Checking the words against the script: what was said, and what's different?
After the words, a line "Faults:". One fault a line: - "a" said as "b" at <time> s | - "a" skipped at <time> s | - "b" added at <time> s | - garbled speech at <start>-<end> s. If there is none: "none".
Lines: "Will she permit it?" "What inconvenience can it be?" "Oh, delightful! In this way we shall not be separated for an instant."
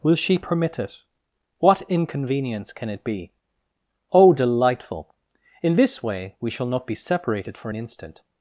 "Will she permit it?" "What inconvenience can it be?" "Oh, delightful! In this way we shall not be separated for an instant."
Faults:
none